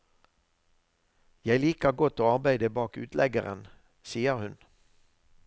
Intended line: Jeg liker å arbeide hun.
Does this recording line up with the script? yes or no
no